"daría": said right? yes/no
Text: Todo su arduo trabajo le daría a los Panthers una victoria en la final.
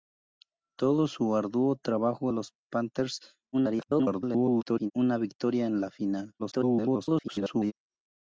no